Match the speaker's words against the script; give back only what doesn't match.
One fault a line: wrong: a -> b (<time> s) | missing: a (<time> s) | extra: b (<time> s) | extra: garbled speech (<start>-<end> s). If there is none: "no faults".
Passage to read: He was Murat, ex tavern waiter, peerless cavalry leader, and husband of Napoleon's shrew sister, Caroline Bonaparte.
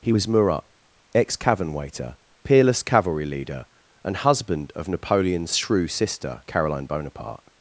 wrong: tavern -> cavern (1.4 s)